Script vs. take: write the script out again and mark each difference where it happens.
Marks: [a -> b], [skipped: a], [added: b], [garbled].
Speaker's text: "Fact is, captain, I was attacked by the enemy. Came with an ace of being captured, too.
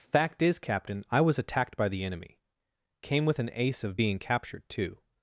"Fact is, captain, I was attacked by the enemy. Came with an ace of being captured, too.